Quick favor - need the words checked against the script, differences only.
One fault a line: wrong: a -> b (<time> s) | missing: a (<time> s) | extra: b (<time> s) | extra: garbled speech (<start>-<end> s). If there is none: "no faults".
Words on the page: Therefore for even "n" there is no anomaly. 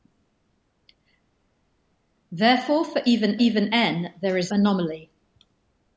extra: even (3.4 s)
missing: no (4.5 s)